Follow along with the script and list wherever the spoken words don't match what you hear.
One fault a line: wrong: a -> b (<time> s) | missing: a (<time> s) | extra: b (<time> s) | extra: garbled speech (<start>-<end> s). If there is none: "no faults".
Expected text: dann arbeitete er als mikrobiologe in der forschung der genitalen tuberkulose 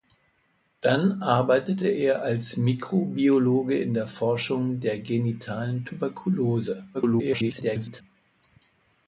extra: garbled speech (6.9-8.0 s)